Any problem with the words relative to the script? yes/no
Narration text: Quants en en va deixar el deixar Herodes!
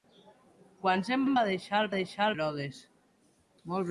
no